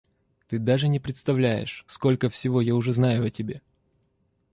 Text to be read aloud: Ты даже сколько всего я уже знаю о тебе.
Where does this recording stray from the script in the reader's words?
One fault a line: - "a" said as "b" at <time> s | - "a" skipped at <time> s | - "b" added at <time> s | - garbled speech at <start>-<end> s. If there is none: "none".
- "не представляешь" added at 0.9 s